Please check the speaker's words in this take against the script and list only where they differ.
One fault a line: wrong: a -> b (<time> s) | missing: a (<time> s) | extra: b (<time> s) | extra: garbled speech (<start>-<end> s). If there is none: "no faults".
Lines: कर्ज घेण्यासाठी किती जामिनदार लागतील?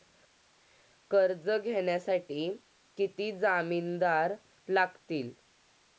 no faults